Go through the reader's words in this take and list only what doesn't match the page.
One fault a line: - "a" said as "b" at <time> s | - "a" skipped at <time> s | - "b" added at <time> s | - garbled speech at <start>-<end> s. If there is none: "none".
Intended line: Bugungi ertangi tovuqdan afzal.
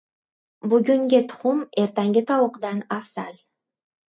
- "tuxum" added at 1.3 s